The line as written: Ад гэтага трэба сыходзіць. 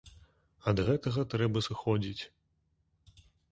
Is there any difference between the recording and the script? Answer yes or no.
no